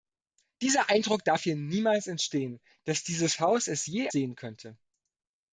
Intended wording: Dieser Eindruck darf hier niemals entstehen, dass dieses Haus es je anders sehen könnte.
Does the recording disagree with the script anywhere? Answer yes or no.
yes